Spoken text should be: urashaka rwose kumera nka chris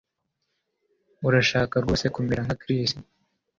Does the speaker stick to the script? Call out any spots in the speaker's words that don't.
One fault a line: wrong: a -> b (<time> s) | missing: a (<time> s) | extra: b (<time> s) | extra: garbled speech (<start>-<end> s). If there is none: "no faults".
no faults